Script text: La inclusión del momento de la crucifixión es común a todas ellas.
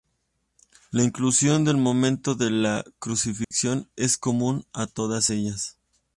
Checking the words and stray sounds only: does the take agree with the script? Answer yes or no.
no